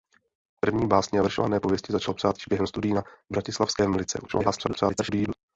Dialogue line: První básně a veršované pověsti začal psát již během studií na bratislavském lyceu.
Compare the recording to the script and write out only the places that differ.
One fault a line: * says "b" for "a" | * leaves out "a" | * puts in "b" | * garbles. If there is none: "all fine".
* garbles